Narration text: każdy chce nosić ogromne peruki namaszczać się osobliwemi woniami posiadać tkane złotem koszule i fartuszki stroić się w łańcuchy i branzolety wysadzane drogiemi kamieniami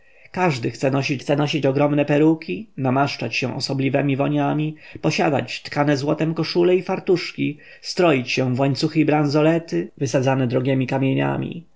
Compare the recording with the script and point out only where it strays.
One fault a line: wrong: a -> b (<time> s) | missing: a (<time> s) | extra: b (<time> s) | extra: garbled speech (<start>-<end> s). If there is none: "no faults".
extra: chce nosić (1.2 s)